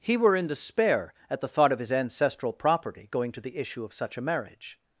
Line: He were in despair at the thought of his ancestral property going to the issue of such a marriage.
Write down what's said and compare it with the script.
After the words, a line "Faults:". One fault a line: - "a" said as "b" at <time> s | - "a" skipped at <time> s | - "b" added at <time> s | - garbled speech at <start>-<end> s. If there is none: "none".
He were in despair at the thought of his ancestral property going to the issue of such a marriage.
Faults:
none